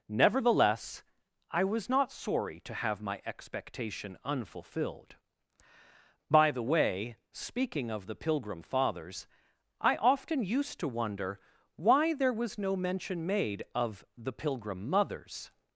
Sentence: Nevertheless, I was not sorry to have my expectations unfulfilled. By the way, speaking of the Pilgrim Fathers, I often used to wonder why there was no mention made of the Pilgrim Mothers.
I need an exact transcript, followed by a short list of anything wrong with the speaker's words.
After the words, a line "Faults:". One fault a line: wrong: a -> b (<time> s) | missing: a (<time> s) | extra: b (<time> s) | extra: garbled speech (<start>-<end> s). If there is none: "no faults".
Nevertheless, I was not sorry to have my expectation unfulfilled. By the way, speaking of the Pilgrim Fathers, I often used to wonder why there was no mention made of the Pilgrim Mothers.
Faults:
wrong: expectations -> expectation (3.2 s)